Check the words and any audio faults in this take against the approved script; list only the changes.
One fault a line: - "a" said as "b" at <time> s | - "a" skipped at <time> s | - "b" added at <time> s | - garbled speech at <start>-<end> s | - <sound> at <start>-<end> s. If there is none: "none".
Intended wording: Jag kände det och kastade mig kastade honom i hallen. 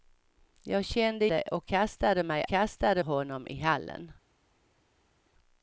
none